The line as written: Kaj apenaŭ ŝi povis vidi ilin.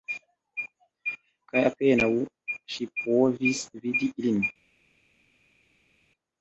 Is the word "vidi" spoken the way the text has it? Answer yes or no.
yes